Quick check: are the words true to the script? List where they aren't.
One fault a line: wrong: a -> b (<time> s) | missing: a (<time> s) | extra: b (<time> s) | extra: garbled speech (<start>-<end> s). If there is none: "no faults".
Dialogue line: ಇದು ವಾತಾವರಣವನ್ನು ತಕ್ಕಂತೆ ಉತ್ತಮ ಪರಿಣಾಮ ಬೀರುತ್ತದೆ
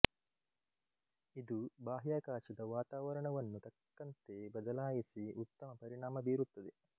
extra: ಬಾಹ್ಯಾಕಾಶದ (1.8 s)
extra: ಬದಲಾಯಿಸಿ (4.6 s)